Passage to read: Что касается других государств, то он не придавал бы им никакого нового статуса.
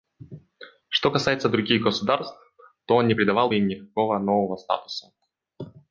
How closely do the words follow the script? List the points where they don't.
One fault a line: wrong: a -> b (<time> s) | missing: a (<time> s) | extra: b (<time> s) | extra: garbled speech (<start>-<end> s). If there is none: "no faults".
no faults